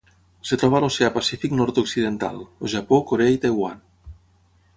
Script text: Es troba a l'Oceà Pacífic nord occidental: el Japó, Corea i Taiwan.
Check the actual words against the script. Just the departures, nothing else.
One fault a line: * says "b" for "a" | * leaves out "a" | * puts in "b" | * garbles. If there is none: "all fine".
all fine